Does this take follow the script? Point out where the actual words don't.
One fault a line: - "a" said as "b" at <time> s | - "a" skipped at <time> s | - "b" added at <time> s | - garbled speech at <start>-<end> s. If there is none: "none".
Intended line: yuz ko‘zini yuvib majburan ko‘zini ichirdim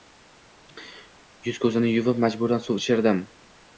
- "ko‘zini" said as "suv" at 2.7 s